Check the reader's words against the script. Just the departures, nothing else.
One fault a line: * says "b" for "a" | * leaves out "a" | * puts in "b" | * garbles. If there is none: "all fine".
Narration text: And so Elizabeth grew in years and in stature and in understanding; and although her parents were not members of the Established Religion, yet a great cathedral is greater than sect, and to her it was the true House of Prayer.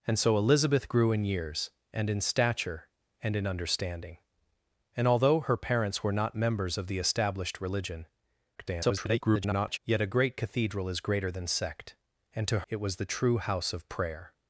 * garbles
* leaves out "her"